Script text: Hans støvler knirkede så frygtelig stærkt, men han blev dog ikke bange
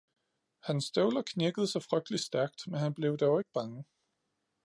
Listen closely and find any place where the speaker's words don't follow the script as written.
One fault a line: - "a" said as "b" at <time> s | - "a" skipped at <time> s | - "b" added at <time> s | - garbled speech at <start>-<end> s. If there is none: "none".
none